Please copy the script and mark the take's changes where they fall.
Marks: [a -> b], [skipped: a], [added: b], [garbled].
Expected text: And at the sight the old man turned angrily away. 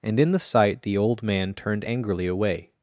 And [at -> in] the sight the old man turned angrily away.